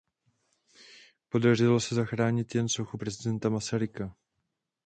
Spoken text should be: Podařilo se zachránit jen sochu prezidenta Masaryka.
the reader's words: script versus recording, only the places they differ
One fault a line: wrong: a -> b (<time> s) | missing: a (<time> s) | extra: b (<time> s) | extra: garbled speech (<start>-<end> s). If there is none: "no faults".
no faults